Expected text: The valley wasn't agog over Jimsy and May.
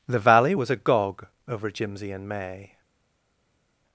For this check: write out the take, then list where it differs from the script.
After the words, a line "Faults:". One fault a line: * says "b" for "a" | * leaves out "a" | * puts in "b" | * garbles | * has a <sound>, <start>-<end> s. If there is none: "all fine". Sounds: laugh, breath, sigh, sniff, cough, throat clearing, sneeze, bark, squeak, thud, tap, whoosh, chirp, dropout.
The valley was agog over Jimsy and May.
Faults:
* says "was" for "wasn't"